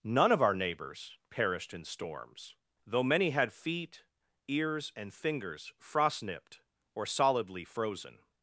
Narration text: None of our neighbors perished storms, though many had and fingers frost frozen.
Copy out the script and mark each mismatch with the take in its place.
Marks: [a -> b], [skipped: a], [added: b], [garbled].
None of our neighbors perished [added: in] storms, though many had [added: feet ears] and fingers frost [added: nipped or solidly] frozen.